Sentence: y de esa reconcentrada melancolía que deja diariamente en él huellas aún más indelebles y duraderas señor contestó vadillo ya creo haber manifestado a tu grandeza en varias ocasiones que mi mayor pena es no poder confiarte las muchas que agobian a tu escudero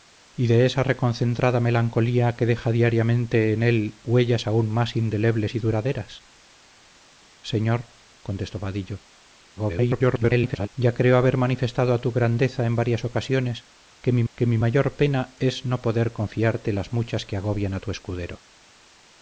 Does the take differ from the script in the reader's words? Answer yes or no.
yes